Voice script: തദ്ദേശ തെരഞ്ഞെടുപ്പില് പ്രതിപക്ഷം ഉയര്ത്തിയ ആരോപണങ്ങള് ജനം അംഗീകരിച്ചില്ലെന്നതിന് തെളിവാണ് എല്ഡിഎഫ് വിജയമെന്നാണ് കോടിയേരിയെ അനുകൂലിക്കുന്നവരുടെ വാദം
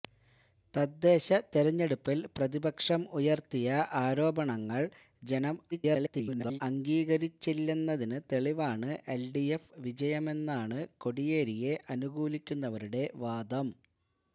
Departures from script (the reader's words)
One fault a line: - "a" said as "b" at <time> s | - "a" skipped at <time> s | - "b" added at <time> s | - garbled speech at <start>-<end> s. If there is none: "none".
- garbled speech at 5.7-6.6 s